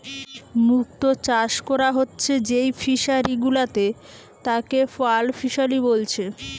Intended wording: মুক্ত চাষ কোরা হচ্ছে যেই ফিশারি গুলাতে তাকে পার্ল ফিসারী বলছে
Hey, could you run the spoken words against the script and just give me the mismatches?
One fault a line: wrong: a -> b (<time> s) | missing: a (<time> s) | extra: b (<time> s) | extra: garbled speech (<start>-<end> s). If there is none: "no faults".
no faults